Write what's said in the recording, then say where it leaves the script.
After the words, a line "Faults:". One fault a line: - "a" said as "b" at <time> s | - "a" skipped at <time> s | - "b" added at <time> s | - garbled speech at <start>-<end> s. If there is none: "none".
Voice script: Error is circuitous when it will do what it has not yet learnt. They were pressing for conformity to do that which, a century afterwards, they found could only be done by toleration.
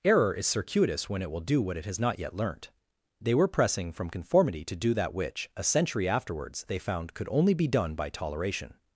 Error is circuitous when it will do what it has not yet learnt. They were pressing from conformity to do that which, a century afterwards, they found could only be done by toleration.
Faults:
- "for" said as "from" at 3.9 s